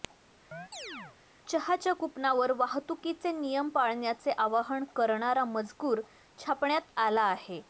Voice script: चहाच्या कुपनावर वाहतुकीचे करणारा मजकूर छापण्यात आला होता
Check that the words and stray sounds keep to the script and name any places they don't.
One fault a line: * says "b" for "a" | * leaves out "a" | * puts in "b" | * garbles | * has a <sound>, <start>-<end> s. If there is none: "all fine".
* has a chirp, 0.5-1.2 s
* puts in "नियम पाळण्याचे आवाहन"
* says "आहे" for "होता"